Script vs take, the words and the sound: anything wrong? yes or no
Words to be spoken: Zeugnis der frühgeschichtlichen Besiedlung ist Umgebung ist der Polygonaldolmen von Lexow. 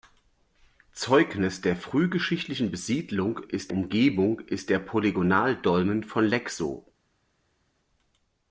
no